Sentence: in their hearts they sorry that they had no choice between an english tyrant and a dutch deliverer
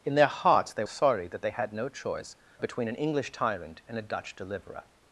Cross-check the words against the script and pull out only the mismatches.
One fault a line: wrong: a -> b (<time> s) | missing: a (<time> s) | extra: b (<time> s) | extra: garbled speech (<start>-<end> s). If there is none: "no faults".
no faults